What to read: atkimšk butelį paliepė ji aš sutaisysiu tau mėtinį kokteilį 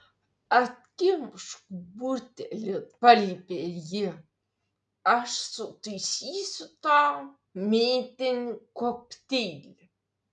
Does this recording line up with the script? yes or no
yes